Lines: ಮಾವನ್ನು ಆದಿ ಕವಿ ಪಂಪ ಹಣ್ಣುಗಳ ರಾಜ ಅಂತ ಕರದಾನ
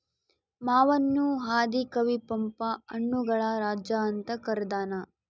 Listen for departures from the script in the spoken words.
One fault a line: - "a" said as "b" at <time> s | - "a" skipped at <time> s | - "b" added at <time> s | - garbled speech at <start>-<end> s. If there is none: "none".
none